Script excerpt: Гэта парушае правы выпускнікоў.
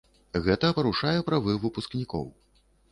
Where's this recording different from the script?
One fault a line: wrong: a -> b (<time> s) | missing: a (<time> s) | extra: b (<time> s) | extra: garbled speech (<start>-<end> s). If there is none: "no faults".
no faults